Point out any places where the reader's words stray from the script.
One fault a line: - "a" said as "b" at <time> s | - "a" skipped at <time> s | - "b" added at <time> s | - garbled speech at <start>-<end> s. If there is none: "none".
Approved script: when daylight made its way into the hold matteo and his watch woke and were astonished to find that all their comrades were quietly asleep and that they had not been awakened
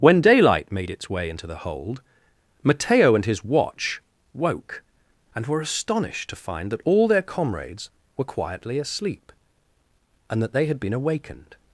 - "not" skipped at 10.8 s